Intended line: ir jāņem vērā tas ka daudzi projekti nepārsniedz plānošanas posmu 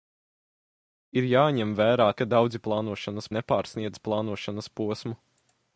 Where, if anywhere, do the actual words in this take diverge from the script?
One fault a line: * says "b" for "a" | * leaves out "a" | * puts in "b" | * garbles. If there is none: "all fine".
* leaves out "tas"
* says "plānošanas" for "projekti"